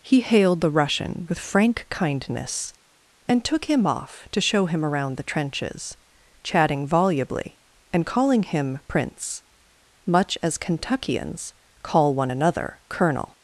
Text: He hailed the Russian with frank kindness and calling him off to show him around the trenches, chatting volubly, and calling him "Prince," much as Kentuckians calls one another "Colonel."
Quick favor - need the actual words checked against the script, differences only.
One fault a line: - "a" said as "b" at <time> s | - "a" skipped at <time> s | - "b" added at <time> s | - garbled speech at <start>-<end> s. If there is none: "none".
- "calling" said as "took" at 3.4 s
- "calls" said as "call" at 11.8 s